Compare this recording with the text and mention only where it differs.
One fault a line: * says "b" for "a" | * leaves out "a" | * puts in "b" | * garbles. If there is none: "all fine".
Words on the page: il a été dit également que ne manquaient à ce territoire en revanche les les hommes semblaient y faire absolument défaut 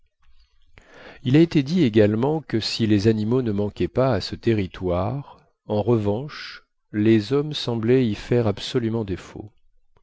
* puts in "si les animaux"
* puts in "pas"
* leaves out "les"